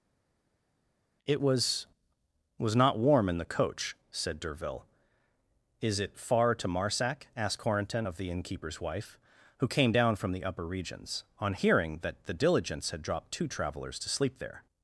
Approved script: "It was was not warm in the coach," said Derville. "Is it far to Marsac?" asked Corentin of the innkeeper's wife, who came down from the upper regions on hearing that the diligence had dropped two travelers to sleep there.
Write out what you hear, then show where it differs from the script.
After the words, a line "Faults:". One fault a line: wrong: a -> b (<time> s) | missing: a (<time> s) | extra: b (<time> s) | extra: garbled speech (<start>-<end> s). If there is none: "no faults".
"It was was not warm in the coach," said Derville. "Is it far to Marsac?" asked Corentin of the innkeeper's wife, who came down from the upper regions on hearing that the diligence had dropped two travelers to sleep there.
Faults:
no faults